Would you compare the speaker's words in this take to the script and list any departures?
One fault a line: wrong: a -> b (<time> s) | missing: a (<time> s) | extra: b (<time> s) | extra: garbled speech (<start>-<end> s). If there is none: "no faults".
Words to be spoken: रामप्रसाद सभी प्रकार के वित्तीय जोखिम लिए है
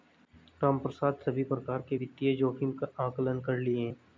extra: का आंकलन कर (2.7 s)